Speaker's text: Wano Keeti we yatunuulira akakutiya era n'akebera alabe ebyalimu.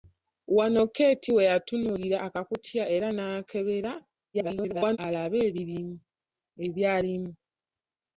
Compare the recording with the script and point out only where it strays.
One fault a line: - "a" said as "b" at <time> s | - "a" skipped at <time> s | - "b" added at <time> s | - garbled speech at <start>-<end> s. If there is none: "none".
- garbled speech at 4.3-5.0 s